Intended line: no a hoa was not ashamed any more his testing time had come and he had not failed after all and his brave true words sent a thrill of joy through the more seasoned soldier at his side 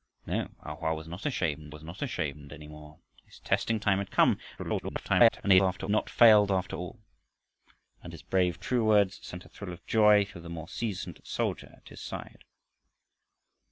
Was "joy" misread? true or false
false